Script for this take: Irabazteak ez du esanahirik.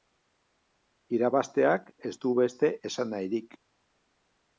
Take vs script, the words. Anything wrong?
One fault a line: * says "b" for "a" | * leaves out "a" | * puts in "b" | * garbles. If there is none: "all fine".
* puts in "beste"